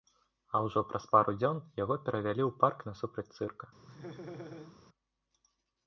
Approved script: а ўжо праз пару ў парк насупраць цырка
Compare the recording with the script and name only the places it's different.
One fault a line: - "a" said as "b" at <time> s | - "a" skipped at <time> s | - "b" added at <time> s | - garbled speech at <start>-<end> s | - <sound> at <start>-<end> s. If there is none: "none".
- "дзён яго перавялі" added at 1.4 s
- laugh at 3.9-4.8 s